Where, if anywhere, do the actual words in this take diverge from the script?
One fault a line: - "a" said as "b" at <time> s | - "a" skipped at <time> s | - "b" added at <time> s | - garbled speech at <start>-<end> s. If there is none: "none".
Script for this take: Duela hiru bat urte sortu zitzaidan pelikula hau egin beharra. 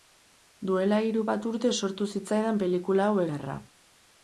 - "egin" skipped at 3.2 s